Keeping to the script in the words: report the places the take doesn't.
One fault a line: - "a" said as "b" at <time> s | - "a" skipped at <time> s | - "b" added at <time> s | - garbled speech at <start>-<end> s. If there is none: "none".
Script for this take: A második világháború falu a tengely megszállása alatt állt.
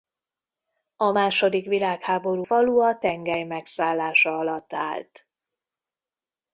none